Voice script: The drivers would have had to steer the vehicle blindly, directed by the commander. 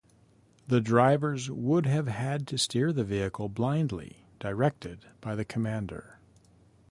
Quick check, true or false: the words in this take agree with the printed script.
true